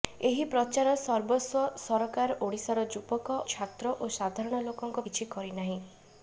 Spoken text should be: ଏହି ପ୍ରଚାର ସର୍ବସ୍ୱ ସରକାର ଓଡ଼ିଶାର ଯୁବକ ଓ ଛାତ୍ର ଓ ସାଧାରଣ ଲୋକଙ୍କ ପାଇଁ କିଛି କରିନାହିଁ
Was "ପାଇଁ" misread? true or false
true